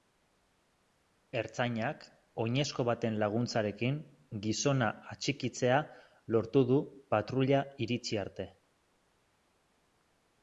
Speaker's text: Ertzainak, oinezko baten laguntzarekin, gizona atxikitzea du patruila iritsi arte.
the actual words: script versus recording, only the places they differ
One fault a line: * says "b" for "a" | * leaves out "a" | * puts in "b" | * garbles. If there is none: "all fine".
* puts in "lortu"